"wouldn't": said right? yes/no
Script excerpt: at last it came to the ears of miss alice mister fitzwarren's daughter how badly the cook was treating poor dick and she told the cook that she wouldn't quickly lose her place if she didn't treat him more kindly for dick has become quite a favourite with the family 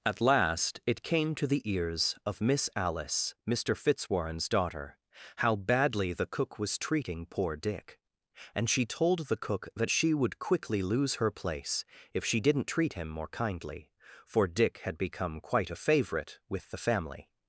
no